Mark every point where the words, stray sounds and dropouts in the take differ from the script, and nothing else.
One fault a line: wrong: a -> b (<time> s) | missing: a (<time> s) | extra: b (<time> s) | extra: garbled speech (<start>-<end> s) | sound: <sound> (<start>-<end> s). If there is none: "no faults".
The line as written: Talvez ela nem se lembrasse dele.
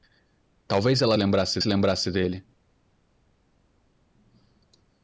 wrong: nem -> lembrasse (1.2 s)